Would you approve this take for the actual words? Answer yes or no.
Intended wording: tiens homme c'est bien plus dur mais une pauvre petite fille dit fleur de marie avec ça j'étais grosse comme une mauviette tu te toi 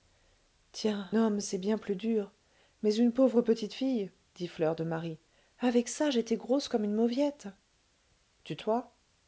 yes